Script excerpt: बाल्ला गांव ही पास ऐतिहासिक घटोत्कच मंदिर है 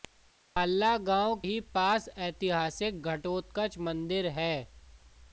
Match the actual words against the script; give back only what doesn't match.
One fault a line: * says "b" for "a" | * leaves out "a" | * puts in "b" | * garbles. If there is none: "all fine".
all fine